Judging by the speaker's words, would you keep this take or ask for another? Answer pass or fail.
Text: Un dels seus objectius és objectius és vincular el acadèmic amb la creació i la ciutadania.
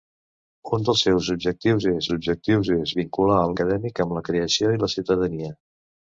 pass